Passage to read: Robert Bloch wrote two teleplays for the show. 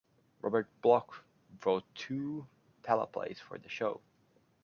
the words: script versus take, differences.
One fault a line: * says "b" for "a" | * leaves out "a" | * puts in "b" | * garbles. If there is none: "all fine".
all fine